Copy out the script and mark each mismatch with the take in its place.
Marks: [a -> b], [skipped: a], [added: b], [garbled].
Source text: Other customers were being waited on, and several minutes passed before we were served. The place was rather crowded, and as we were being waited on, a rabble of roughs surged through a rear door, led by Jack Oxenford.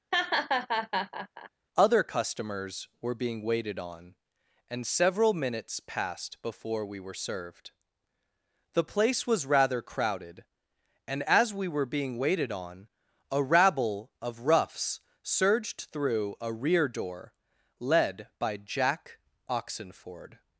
Other customers were being waited on, and several minutes passed before we were served. The place was rather crowded, and as we were being waited on, a rabble of roughs surged through a rear door, led by Jack Oxenford.